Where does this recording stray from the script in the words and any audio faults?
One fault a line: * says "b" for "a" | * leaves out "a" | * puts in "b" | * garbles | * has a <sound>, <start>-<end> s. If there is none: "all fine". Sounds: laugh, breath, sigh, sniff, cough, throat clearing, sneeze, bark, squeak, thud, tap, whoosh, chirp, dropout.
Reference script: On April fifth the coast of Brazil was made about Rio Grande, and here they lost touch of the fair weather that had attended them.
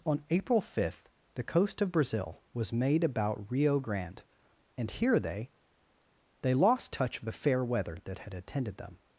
* puts in "they"